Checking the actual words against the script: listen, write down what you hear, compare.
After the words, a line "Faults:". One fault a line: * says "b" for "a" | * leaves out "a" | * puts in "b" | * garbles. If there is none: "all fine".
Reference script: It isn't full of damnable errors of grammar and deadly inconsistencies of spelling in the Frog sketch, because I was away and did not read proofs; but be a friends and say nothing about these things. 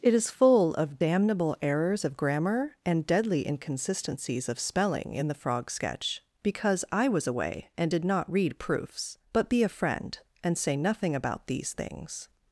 It is full of damnable errors of grammar and deadly inconsistencies of spelling in the Frog sketch, because I was away and did not read proofs; but be a friend and say nothing about these things.
Faults:
* says "is" for "isn't"
* says "friend" for "friends"